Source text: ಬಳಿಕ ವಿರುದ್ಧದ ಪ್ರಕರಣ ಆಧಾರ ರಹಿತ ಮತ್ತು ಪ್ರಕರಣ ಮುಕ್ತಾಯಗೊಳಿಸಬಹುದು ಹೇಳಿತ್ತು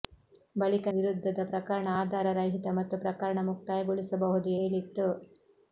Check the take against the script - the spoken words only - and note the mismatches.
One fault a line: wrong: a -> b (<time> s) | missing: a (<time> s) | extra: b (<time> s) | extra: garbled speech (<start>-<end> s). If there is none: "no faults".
no faults